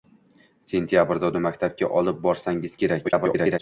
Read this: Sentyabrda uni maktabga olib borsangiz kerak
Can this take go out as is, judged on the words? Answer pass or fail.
fail